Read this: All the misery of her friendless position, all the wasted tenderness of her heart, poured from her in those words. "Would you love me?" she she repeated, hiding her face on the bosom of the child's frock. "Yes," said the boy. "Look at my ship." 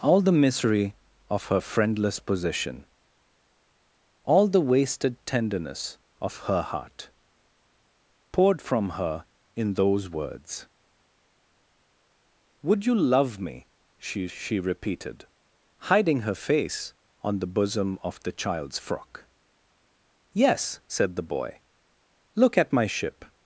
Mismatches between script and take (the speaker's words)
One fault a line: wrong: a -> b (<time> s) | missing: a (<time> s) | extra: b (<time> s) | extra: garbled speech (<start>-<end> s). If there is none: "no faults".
no faults